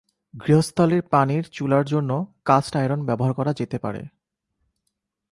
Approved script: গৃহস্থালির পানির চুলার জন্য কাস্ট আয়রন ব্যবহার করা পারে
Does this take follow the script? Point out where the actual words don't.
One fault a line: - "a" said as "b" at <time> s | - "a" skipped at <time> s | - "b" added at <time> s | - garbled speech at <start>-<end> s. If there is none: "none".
- "যেতে" added at 3.5 s